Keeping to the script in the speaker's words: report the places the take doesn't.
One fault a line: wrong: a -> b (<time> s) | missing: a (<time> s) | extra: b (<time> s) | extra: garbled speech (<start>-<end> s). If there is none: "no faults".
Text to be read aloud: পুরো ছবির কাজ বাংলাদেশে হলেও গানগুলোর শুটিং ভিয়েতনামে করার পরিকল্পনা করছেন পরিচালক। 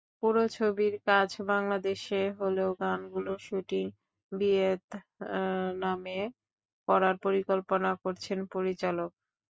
no faults